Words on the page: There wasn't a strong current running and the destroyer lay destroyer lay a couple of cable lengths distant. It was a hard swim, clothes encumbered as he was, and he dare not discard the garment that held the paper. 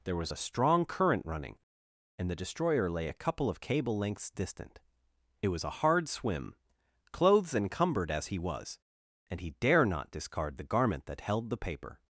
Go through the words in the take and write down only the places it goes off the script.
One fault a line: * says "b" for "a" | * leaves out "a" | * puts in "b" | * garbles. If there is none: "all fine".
* says "was" for "wasn't"
* leaves out "destroyer lay"